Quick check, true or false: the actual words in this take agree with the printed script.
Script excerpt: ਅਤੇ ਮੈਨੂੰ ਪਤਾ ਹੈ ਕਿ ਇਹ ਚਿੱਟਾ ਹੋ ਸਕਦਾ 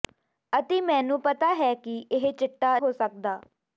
true